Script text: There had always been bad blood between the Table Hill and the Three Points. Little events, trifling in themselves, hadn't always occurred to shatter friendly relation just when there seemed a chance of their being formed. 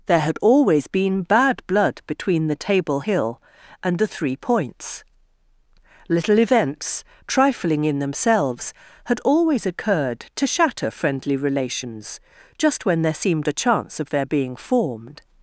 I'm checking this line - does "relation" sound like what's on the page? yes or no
no